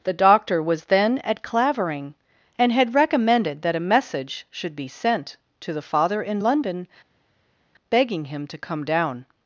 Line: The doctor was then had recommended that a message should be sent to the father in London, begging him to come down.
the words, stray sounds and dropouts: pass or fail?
fail